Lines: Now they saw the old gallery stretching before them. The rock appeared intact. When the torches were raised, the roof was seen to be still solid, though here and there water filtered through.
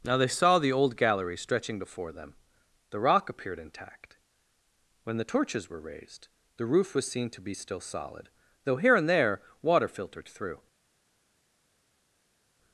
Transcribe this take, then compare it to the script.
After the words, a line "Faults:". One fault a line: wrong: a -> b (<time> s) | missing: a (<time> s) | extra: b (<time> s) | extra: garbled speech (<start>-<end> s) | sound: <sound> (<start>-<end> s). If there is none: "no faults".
Now they saw the old gallery stretching before them. The rock appeared intact. When the torches were raised, the roof was seen to be still solid, though here and there water filtered through.
Faults:
no faults